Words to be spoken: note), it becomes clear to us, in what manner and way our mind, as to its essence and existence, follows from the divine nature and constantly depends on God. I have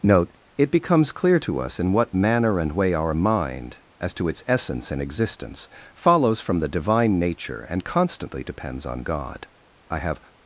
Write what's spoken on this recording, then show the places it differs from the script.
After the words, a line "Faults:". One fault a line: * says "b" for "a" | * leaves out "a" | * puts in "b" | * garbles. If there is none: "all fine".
note), it becomes clear to us, in what manner and way our mind, as to its essence and existence, follows from the divine nature and constantly depends on God. I have
Faults:
all fine